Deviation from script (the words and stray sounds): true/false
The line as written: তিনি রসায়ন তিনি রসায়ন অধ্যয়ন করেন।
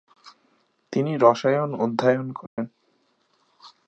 true